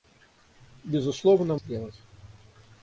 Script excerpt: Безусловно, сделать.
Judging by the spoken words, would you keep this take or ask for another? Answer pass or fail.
pass